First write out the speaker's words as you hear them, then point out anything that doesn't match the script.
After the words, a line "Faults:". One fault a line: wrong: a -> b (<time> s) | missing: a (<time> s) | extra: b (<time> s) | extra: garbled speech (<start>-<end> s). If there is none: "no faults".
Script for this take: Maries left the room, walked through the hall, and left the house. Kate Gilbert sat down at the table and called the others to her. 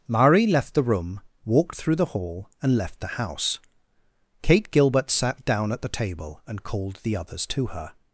Marie left the room, walked through the hall, and left the house. Kate Gilbert sat down at the table and called the others to her.
Faults:
wrong: Maries -> Marie (0.1 s)